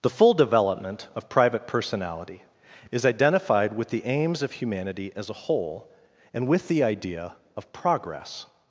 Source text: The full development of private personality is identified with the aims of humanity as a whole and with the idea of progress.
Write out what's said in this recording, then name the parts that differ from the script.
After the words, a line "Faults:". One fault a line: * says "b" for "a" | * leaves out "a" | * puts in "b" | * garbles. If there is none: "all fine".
The full development of private personality is identified with the aims of humanity as a whole and with the idea of progress.
Faults:
all fine